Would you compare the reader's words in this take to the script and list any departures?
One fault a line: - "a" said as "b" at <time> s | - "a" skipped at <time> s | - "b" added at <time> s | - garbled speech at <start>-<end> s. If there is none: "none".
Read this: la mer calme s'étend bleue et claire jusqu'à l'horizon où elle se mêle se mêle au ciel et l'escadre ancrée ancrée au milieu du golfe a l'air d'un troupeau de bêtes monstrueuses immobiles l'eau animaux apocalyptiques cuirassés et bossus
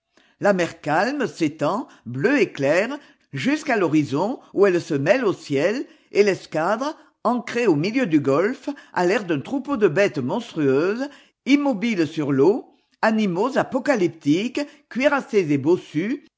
- "se mêle" skipped at 5.3 s
- "ancrée" skipped at 7.7 s
- "sur" added at 12.1 s